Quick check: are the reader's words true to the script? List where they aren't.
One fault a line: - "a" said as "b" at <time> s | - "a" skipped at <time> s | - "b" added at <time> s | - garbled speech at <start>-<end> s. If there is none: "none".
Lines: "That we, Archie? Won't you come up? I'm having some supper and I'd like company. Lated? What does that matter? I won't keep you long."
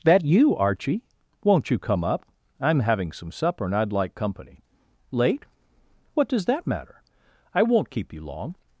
- "we" said as "you" at 0.2 s
- "Lated" said as "Late" at 5.1 s